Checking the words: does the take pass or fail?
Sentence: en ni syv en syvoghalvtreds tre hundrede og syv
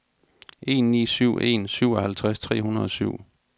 pass